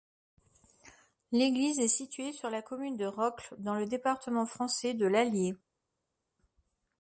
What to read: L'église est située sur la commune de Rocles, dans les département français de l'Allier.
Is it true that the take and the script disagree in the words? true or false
true